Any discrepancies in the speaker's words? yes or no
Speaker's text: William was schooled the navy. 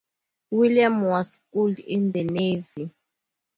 yes